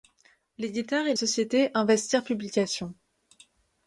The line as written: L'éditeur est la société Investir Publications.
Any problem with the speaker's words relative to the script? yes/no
yes